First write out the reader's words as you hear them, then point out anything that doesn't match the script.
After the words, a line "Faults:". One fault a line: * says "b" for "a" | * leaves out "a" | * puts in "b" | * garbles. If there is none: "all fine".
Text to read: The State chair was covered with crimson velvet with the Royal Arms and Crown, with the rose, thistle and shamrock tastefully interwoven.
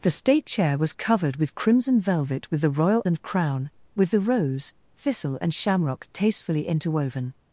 The State chair was covered with crimson velvet with the Royal And Crown, with the rose, thistle and shamrock tastefully interwoven.
Faults:
* leaves out "Arms"